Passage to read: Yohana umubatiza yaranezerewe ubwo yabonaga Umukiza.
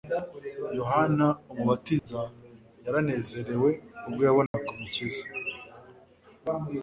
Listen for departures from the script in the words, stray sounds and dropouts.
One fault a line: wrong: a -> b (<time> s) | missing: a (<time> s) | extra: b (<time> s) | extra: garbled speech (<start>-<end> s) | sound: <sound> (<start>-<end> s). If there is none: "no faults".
sound: dropout (2.0-2.1 s)
sound: dropout (4.5-4.5 s)